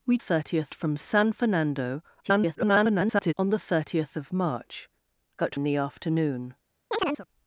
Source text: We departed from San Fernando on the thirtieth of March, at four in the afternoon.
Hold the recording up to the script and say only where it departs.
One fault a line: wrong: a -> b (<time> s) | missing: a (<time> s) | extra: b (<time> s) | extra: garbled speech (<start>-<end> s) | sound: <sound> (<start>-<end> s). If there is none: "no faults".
wrong: departed -> thirtieth (0.2 s)
extra: garbled speech (2.2-3.3 s)
missing: four (5.5 s)
sound: chirp (6.9-7.3 s)